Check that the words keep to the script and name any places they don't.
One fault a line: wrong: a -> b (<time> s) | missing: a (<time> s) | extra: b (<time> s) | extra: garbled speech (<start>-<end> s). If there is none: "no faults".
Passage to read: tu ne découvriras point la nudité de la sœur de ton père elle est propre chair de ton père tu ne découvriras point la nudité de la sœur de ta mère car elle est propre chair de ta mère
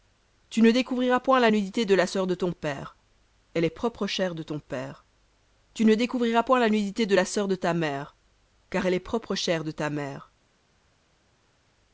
no faults